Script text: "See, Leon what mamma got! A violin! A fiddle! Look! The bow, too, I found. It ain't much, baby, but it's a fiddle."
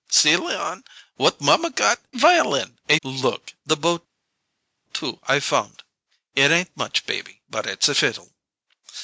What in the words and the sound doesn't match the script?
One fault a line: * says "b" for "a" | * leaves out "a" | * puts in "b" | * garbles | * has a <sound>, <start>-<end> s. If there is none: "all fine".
* leaves out "A"
* leaves out "fiddle"